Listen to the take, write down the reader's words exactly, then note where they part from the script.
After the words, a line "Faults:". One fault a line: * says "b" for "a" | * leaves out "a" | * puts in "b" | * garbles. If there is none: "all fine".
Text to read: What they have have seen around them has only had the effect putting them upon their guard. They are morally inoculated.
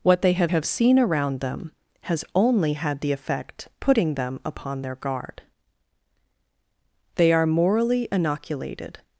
What they have have seen around them has only had the effect putting them upon their guard. They are morally inoculated.
Faults:
all fine